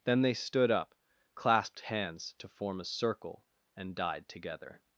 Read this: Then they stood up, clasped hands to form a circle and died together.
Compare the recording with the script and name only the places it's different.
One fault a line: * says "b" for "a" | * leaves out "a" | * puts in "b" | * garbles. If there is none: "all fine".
all fine